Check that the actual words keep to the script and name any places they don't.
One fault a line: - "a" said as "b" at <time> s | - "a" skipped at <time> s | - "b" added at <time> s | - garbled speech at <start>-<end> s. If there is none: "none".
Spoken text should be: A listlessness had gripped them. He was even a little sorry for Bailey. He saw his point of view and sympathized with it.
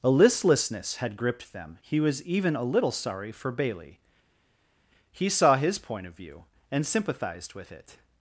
none